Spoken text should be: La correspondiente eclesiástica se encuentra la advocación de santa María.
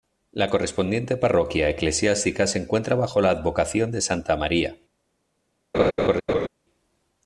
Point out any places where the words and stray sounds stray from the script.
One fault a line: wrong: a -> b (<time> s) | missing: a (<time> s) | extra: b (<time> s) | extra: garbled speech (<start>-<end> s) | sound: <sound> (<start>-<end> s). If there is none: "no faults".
extra: parroquia (1.1 s)
extra: bajo (3.0 s)
sound: laugh (5.7-6.5 s)